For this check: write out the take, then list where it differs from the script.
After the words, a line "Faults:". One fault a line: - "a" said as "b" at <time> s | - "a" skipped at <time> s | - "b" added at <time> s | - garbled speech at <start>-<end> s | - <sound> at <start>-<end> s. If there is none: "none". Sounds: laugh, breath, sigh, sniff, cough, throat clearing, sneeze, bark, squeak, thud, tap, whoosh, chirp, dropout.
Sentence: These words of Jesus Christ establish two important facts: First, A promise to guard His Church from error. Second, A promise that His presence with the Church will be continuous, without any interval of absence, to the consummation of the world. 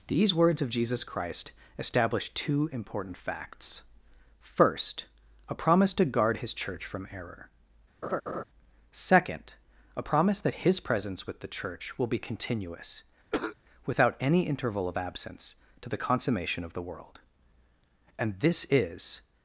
These words of Jesus Christ establish two important facts: First, A promise to guard His Church from error. Second, A promise that His presence with the Church will be continuous, without any interval of absence, to the consummation of the world. And this is
Faults:
- laugh at 8.0-8.4 s
- cough at 13.3-13.6 s
- "And this is" added at 18.2 s